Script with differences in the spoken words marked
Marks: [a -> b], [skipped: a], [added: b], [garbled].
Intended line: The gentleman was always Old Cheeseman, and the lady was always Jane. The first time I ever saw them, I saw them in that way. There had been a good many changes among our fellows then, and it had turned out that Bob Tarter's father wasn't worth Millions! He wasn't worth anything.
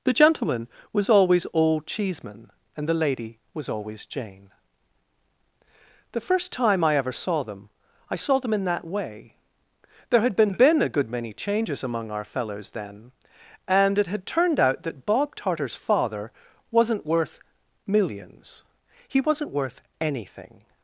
The gentleman was always Old Cheeseman, and the lady was always Jane. The first time I ever saw them, I saw them in that way. There had been [added: been] a good many changes among our fellows then, and it had turned out that Bob Tarter's father wasn't worth Millions! He wasn't worth anything.